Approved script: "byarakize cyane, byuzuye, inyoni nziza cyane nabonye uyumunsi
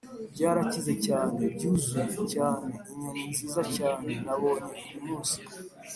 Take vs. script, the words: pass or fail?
fail